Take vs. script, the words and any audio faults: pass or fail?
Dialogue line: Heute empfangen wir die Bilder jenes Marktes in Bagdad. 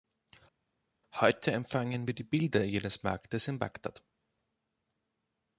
pass